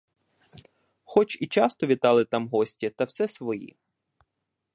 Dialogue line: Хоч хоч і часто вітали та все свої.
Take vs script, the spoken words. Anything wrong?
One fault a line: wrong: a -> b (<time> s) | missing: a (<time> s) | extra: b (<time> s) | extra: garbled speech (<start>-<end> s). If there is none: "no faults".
missing: хоч (1.4 s)
extra: там гості (2.2 s)